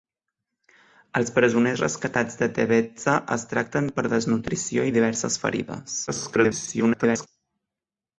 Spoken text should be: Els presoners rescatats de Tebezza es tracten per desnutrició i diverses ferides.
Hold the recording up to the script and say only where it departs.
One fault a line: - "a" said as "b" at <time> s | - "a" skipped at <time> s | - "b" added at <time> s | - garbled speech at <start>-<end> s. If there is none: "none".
- garbled speech at 6.1-7.3 s